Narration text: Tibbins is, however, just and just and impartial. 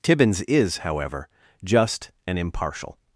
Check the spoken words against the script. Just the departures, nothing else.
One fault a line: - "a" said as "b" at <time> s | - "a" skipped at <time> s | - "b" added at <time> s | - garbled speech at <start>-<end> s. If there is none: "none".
- "just and" skipped at 2.4 s